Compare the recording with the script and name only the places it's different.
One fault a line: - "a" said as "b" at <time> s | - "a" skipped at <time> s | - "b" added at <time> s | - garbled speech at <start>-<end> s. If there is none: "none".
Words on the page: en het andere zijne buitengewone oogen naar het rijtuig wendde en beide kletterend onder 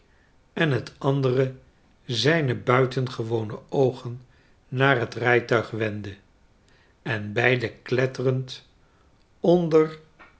none